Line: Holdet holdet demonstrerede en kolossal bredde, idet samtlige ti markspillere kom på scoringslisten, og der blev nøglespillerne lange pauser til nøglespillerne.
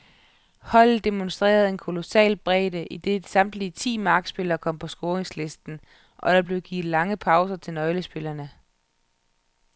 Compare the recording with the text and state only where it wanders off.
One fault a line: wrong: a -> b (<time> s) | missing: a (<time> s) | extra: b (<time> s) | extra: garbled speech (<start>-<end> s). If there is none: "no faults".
missing: holdet (1.1 s)
wrong: nøglespillerne -> givet (6.6 s)